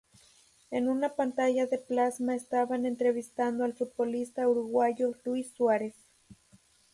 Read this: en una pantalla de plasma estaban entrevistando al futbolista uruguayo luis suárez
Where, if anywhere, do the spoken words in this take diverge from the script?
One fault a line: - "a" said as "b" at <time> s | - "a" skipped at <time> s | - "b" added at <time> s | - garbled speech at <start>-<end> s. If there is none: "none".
none